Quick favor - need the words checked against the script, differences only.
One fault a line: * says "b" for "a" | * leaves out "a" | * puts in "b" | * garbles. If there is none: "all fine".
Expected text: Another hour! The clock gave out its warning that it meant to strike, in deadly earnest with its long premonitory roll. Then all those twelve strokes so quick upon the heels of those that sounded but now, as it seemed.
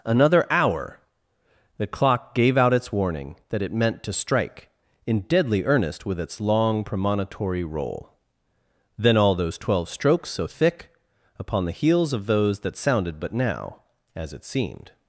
* says "thick" for "quick"